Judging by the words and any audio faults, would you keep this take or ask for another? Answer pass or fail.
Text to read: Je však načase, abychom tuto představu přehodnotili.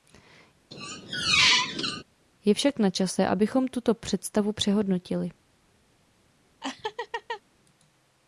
fail